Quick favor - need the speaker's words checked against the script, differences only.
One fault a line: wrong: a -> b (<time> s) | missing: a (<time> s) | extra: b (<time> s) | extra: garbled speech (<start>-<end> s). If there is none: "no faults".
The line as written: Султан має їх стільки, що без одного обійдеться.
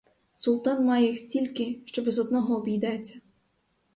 no faults